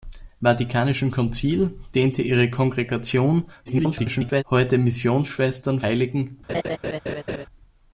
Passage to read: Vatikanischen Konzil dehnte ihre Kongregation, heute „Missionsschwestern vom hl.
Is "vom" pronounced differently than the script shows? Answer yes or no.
yes